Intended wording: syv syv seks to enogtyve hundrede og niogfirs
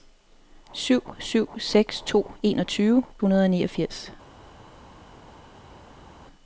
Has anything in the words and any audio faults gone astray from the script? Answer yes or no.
no